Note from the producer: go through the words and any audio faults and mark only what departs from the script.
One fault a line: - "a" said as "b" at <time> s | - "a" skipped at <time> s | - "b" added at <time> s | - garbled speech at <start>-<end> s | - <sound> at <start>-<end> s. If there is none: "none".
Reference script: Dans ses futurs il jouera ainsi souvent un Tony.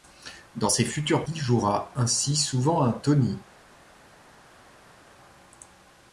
none